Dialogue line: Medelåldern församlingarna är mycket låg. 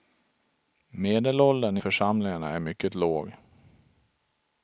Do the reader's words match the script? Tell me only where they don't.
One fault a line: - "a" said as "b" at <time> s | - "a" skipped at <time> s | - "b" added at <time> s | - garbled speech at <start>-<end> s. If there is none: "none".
none